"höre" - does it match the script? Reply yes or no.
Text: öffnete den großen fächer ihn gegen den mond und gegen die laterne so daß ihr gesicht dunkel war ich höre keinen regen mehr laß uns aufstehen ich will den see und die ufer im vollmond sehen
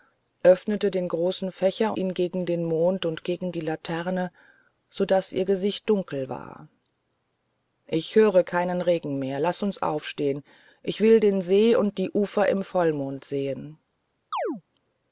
yes